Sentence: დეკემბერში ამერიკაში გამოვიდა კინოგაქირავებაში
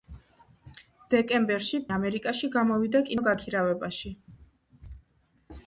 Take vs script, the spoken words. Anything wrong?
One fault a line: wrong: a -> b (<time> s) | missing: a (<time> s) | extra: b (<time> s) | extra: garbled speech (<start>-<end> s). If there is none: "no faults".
no faults